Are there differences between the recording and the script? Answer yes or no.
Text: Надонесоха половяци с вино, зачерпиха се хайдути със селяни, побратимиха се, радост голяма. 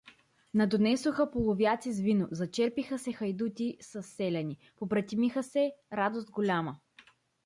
no